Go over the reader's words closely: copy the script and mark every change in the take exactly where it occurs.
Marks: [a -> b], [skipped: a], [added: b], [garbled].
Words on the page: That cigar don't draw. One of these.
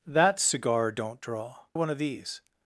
That cigar don't draw. One of these.